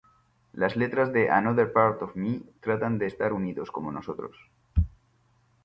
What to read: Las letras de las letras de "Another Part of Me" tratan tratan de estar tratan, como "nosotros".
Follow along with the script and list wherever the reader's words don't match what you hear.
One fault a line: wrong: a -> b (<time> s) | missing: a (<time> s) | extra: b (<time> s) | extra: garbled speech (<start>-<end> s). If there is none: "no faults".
missing: las letras de (1.3 s)
missing: tratan (3.0 s)
wrong: tratan -> unidos (3.3 s)